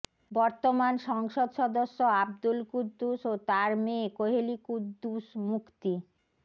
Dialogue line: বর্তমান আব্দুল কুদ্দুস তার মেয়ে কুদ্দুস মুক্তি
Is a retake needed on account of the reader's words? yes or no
yes